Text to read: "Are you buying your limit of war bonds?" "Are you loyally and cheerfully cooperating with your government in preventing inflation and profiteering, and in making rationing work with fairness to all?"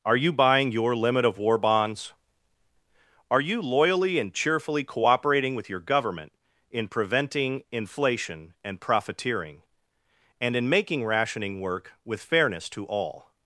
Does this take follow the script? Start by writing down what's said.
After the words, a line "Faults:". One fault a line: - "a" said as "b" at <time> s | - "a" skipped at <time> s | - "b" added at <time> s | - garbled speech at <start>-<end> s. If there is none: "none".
"Are you buying your limit of war bonds?" "Are you loyally and cheerfully cooperating with your government in preventing inflation and profiteering, and in making rationing work with fairness to all?"
Faults:
none